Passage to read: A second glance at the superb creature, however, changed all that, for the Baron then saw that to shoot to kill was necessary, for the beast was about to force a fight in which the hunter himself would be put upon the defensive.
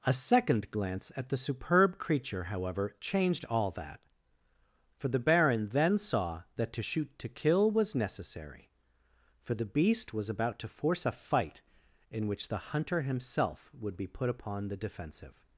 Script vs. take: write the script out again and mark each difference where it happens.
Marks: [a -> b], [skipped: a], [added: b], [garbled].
A second glance at the superb creature, however, changed all that, for the Baron then saw that to shoot to kill was necessary, for the beast was about to force a fight in which the hunter himself would be put upon the defensive.